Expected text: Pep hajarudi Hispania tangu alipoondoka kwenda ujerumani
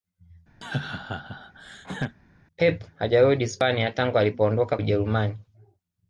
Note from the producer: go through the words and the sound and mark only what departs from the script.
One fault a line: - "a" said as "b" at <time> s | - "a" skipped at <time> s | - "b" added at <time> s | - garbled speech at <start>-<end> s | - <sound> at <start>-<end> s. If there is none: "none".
- laugh at 0.6-2.2 s
- "kwenda" skipped at 4.8 s